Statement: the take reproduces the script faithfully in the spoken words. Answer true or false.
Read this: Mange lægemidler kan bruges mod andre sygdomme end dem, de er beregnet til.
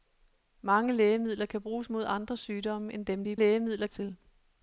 false